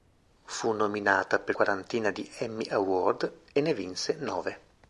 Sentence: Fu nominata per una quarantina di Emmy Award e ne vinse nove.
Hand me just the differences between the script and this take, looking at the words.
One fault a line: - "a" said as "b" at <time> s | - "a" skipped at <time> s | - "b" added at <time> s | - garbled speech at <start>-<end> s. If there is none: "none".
- "una" skipped at 1.6 s